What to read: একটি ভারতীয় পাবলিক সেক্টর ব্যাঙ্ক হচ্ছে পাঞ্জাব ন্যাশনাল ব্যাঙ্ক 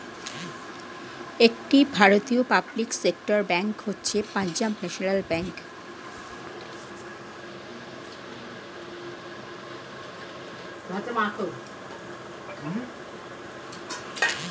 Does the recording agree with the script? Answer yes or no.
yes